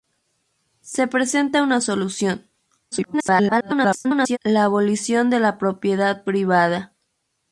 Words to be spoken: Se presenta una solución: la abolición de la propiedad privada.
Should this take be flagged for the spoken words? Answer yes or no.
yes